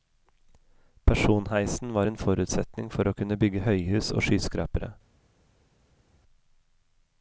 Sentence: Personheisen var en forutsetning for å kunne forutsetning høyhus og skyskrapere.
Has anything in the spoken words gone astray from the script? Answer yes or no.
yes